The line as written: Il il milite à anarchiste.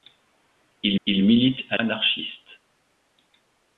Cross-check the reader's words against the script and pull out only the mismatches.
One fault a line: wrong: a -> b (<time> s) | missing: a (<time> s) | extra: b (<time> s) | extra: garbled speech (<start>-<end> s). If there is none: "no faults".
no faults